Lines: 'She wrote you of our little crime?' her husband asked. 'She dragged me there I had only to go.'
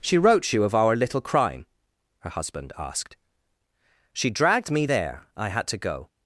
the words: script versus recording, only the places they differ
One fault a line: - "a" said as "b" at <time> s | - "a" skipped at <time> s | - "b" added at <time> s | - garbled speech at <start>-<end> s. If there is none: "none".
- "only" skipped at 5.7 s